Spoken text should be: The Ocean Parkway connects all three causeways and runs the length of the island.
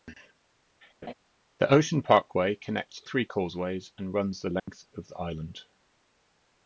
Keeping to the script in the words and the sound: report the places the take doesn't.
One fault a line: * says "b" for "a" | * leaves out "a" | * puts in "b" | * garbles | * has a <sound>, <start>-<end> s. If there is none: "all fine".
* has a laugh, 1.0-1.1 s
* leaves out "all"
* has a dropout, 4.6-4.7 s